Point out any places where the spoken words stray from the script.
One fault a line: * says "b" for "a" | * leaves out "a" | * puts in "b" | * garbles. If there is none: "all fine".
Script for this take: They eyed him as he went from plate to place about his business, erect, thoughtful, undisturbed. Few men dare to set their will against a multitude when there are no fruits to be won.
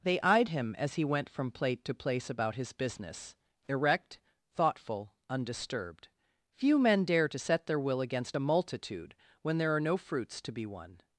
all fine